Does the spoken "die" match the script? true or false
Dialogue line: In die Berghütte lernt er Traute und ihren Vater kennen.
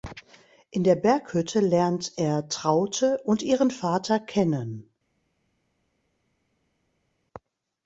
false